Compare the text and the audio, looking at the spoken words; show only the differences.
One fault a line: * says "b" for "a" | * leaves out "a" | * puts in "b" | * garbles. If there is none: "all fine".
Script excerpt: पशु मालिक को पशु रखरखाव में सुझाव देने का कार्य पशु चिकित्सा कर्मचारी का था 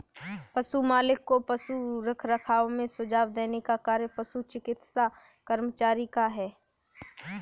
* says "है" for "था"